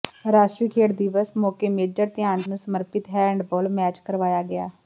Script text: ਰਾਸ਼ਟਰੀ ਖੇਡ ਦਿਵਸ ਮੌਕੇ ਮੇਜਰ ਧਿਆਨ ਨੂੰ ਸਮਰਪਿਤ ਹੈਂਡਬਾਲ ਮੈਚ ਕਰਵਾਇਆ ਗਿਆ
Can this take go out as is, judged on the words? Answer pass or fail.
pass